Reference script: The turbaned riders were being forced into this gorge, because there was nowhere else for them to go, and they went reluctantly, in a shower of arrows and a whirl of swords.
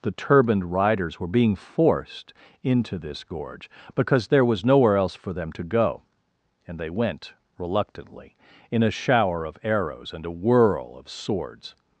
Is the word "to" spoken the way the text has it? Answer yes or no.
yes